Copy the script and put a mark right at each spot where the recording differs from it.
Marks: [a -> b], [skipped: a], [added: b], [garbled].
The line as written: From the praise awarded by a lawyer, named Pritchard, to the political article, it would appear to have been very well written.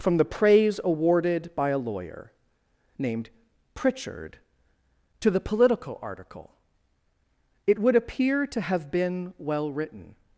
From the praise awarded by a lawyer, named Pritchard, to the political article, it would appear to have been [skipped: very] well written.